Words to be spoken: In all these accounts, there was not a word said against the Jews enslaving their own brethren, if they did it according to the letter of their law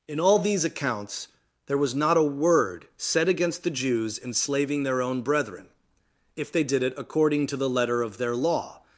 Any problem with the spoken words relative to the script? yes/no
no